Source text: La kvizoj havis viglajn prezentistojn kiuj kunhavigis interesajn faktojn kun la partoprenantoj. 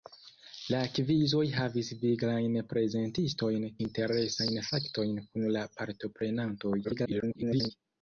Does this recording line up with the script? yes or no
no